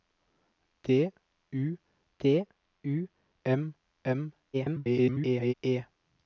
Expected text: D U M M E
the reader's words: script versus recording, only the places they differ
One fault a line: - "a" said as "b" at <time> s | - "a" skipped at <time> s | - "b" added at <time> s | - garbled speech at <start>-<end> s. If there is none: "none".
- "d U" added at 2.2 s
- garbled speech at 4.5-5.5 s